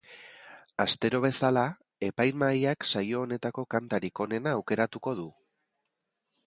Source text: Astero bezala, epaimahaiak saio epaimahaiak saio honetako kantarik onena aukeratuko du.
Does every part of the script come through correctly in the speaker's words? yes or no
no